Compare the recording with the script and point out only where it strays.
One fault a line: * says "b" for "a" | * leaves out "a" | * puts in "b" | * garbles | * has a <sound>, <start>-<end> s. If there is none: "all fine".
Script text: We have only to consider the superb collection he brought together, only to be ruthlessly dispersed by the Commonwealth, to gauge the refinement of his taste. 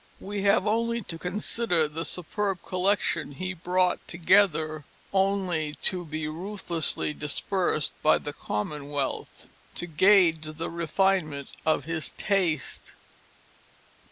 all fine